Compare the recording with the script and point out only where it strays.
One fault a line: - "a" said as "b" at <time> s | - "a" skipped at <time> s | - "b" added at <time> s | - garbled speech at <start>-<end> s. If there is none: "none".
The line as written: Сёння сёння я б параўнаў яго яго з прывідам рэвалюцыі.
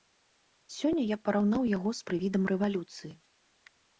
- "сёння" skipped at 1.0 s
- "яго" skipped at 1.9 s